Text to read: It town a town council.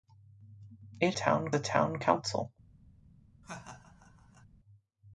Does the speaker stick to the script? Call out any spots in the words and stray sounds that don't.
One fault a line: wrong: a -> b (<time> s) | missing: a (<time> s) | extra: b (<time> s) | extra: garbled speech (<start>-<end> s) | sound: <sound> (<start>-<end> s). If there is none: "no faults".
sound: laugh (3.4-4.5 s)